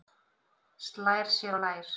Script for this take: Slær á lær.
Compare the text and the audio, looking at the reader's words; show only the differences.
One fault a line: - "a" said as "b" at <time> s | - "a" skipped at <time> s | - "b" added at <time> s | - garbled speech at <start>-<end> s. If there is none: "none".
- "sér" added at 1.4 s